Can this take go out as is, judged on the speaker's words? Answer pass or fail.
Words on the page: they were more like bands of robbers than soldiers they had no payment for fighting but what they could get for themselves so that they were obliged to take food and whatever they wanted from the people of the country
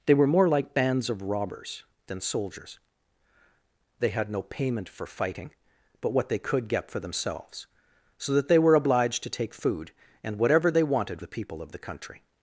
fail